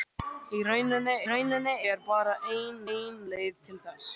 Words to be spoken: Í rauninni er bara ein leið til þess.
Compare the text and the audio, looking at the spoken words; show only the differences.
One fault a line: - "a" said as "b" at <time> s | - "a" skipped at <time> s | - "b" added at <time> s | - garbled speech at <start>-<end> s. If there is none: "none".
- "rauninni" added at 1.3 s
- "ein" added at 2.9 s